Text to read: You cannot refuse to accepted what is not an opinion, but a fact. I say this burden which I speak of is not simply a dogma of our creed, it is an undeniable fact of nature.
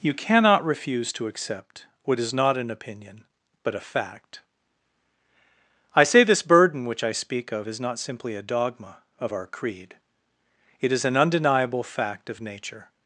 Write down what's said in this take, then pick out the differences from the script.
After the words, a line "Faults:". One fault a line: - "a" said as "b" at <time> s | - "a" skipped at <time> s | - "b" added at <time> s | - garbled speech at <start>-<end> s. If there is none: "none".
You cannot refuse to accept what is not an opinion, but a fact. I say this burden which I speak of is not simply a dogma of our creed, it is an undeniable fact of nature.
Faults:
- "accepted" said as "accept" at 1.3 s